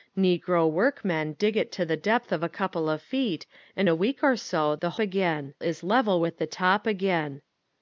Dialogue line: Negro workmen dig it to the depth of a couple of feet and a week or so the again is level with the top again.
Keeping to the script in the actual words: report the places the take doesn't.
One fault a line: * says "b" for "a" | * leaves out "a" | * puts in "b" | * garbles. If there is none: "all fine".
all fine